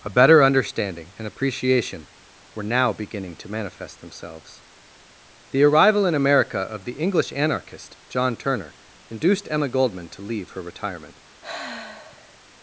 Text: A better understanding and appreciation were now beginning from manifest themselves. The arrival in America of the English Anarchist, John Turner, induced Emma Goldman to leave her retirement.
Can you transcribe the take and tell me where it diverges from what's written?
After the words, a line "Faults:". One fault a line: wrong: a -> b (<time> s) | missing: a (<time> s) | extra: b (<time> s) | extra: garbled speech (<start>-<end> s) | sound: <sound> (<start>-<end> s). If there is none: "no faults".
A better understanding and appreciation were now beginning to manifest themselves. The arrival in America of the English Anarchist, John Turner, induced Emma Goldman to leave her retirement.
Faults:
wrong: from -> to (3.4 s)
sound: sigh (11.4-12.4 s)